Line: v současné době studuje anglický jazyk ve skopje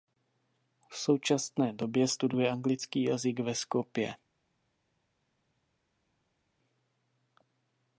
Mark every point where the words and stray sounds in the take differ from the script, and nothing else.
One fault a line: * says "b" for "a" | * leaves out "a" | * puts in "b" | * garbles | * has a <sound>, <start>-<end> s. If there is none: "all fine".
all fine